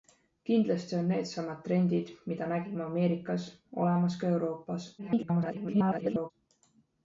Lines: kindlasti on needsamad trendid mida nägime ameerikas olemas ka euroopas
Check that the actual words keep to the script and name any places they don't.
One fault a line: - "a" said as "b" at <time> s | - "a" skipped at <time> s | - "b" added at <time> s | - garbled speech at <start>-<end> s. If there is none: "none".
- garbled speech at 5.0-6.3 s